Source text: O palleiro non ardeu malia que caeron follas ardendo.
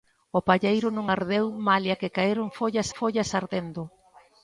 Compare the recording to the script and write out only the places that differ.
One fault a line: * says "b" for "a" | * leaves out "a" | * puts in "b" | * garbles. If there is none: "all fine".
* puts in "follas"